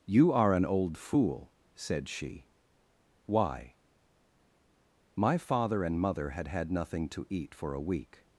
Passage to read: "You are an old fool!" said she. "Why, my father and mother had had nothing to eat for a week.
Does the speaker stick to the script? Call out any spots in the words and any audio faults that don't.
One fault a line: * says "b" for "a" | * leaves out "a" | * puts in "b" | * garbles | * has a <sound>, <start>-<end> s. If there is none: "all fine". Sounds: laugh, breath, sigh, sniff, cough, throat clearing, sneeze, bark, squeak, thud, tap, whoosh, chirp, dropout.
all fine